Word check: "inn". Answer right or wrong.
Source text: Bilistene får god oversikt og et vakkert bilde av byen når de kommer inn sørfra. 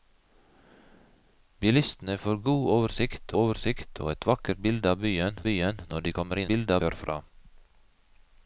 wrong